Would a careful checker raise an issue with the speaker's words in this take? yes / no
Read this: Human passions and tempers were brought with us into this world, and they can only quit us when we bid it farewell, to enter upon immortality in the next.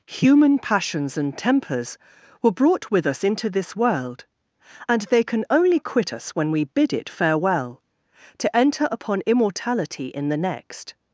no